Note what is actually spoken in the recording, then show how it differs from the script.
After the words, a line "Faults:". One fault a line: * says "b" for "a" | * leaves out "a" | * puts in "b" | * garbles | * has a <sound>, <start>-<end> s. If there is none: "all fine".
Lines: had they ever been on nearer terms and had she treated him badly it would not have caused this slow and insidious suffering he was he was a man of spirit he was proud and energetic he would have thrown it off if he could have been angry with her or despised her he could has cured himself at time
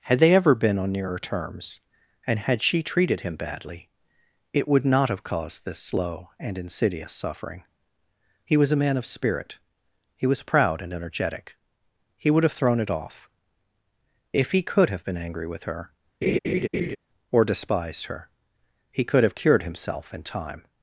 had they ever been on nearer terms and had she treated him badly it would not have caused this slow and insidious suffering he was a man of spirit he was proud and energetic he would have thrown it off if he could have been angry with her or despised her he could have cured himself in time
Faults:
* leaves out "he was"
* has a laugh, 16.2-17.0 s
* says "have" for "has"
* says "in" for "at"